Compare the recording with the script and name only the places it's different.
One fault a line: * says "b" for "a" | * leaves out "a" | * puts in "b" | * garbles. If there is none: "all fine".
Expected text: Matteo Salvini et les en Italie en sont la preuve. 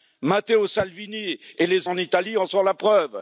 all fine